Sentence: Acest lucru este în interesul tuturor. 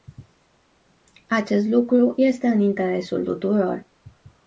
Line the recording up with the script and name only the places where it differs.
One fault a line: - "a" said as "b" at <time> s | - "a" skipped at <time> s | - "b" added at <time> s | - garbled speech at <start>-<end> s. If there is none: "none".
none